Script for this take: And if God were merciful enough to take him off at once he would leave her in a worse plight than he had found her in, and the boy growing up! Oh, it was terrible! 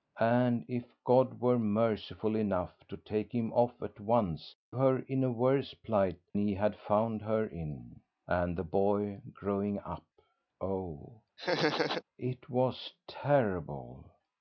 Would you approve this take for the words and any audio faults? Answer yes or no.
no